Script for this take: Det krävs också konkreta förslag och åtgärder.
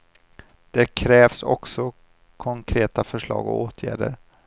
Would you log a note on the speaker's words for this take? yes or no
no